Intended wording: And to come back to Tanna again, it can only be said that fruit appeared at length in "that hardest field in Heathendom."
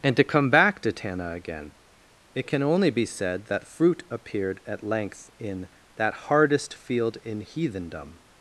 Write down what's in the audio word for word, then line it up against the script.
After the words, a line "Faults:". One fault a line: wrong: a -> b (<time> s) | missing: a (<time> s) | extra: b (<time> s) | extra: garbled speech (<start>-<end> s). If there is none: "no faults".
And to come back to Tanna again, it can only be said that fruit appeared at length in "that hardest field in Heathendom."
Faults:
no faults